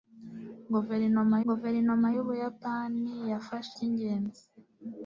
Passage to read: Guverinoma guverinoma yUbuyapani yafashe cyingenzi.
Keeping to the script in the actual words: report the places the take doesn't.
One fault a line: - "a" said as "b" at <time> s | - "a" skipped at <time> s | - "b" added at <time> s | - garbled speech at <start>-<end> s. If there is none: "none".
none